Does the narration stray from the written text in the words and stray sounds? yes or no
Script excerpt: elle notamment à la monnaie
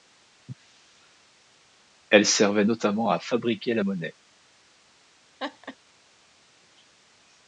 yes